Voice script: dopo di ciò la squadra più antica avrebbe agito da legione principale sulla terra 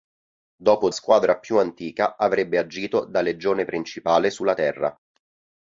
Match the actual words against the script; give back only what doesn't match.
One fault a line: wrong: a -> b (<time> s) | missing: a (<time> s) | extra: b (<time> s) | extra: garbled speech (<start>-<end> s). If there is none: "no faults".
missing: di ciò la (0.9 s)